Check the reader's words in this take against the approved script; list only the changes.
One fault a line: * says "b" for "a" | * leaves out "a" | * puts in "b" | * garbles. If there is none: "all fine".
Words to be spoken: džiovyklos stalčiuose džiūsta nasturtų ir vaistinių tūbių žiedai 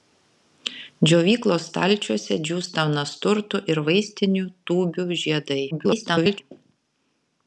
* garbles